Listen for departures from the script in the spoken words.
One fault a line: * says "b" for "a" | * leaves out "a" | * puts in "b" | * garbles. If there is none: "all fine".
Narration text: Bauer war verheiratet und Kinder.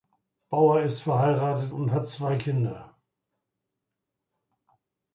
* says "ist" for "war"
* puts in "hat zwei"